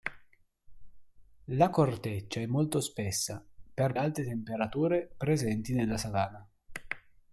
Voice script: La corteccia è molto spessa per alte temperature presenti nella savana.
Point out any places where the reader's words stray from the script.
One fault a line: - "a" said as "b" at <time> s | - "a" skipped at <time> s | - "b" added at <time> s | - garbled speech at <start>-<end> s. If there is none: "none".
none